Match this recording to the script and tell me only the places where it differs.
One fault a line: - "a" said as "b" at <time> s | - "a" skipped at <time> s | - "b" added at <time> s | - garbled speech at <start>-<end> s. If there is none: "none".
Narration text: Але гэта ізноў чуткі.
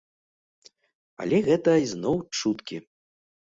none